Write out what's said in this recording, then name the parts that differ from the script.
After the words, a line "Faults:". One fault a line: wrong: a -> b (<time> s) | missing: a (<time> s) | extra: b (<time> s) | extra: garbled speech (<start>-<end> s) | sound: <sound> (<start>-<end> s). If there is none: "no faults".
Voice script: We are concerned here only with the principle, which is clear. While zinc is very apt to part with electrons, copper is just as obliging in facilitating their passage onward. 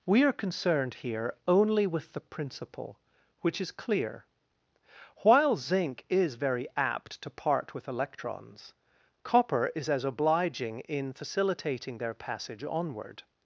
We are concerned here only with the principle, which is clear. While zinc is very apt to part with electrons, copper is as obliging in facilitating their passage onward.
Faults:
missing: just (9.9 s)